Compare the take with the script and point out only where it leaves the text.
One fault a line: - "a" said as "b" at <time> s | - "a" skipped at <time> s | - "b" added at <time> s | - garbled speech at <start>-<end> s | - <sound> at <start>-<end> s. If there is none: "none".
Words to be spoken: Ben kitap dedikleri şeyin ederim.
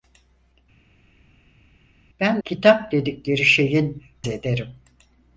none